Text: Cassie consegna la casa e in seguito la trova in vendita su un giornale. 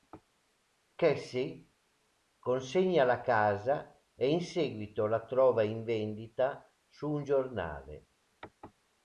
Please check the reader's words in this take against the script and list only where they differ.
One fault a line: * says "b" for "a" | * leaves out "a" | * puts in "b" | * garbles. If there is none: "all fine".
all fine